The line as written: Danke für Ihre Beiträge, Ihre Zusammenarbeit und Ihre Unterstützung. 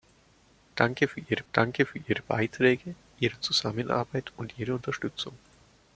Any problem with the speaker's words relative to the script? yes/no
yes